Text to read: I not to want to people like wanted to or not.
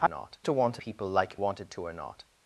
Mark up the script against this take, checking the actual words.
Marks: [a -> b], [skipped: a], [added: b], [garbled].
I not to want to people like wanted to or not.